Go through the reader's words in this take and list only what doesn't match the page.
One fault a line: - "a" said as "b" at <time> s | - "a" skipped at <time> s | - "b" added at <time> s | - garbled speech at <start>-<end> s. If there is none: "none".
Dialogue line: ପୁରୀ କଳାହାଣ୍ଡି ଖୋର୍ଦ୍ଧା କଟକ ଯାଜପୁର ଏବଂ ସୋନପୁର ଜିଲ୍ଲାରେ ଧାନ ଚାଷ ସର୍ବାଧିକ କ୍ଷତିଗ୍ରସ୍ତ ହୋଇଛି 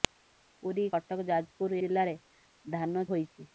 - "କଳାହାଣ୍ଡି ଖୋର୍ଦ୍ଧା" skipped at 0.8 s
- "ଏବଂ ସୋନପୁର" skipped at 1.8 s
- "ଚାଷ ସର୍ବାଧିକ କ୍ଷତିଗ୍ରସ୍ତ" skipped at 3.0 s